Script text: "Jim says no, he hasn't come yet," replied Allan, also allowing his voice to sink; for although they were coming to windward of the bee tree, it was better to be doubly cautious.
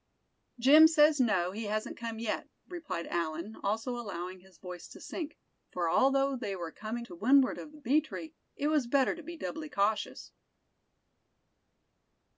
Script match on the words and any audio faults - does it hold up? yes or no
yes